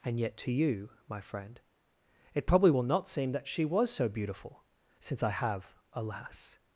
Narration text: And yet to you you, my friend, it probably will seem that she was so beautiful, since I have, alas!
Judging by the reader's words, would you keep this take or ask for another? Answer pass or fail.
fail